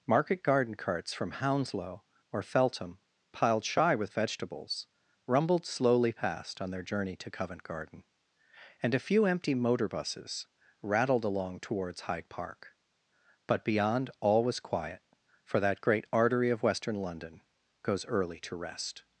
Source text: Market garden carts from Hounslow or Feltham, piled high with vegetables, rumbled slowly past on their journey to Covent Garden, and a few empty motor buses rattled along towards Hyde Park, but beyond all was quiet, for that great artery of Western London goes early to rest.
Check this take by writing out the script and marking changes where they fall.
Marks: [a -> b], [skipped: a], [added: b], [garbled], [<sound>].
Market garden carts from Hounslow or Feltham, piled [high -> shy] with vegetables, rumbled slowly past on their journey to Covent Garden, and a few empty motor buses rattled along towards Hyde Park, but beyond all was quiet, for that great artery of Western London goes early to rest.